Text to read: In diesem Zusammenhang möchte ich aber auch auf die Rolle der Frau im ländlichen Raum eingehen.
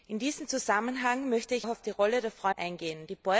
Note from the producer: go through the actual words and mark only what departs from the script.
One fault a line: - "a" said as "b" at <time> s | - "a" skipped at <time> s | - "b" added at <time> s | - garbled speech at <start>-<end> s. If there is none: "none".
- "aber" skipped at 1.7 s
- "im ländlichen Raum" skipped at 2.5 s